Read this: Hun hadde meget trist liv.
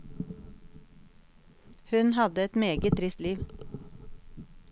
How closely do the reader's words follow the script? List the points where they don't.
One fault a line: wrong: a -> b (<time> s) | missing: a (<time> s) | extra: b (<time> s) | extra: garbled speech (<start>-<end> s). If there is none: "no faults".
extra: et (2.4 s)